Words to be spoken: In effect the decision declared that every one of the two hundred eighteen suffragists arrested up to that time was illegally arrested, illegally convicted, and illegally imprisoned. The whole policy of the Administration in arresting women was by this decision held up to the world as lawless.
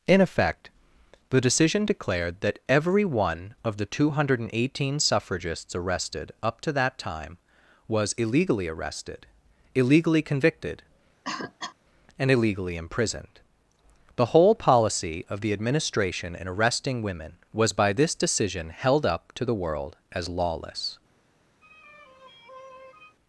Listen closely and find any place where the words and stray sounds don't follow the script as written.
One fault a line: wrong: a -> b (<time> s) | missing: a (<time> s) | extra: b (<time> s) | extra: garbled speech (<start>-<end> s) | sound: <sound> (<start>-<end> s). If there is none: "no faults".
sound: cough (11.2-11.8 s)
sound: sigh (21.6-23.2 s)